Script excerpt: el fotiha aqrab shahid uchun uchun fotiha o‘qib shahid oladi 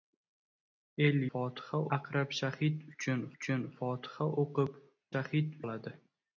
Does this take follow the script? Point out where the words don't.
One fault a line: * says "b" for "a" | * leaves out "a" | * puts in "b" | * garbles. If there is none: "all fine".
all fine